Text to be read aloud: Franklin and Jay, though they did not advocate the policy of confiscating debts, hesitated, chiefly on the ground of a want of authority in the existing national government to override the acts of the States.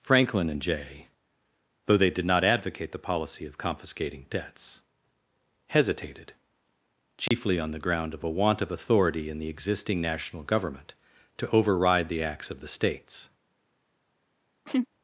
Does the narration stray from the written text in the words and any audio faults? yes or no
yes